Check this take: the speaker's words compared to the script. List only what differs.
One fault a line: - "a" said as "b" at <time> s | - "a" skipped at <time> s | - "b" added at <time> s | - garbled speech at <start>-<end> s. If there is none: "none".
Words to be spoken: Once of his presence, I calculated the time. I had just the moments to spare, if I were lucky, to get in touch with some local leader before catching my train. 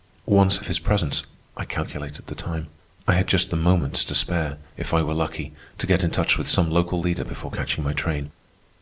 none